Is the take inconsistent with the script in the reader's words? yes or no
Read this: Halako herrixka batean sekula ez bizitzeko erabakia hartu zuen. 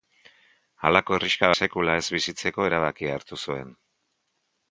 yes